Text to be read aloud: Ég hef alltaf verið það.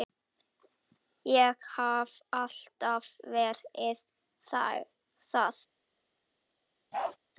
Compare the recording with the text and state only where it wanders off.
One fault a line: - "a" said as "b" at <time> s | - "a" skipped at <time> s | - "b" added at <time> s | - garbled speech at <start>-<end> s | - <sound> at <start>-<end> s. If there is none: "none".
- bark at 6.9-7.2 s